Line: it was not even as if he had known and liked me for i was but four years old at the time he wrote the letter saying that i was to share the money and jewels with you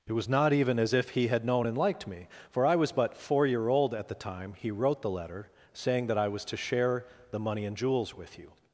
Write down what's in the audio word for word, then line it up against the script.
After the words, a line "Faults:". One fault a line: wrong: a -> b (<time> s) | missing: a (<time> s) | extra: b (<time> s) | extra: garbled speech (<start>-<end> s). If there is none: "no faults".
it was not even as if he had known and liked me for i was but four year old at the time he wrote the letter saying that i was to share the money and jewels with you
Faults:
wrong: years -> year (3.5 s)